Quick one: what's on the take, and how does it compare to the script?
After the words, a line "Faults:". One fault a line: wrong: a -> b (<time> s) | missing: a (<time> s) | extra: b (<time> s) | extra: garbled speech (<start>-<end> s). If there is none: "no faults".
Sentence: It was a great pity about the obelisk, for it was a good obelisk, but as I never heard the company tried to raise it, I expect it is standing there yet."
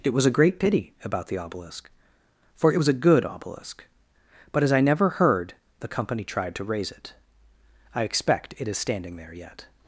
It was a great pity about the obelisk, for it was a good obelisk, but as I never heard the company tried to raise it, I expect it is standing there yet."
Faults:
no faults